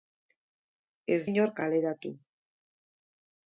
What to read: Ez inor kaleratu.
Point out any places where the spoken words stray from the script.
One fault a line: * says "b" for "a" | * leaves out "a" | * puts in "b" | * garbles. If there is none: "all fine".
all fine